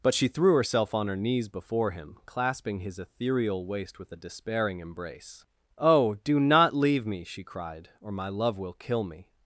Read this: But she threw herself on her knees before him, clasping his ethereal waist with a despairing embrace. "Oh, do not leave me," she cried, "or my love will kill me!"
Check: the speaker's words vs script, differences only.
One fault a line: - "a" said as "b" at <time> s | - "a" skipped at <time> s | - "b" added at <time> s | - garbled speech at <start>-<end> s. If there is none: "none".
none